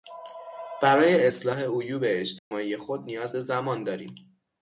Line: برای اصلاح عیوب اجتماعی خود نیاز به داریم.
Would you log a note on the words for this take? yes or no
yes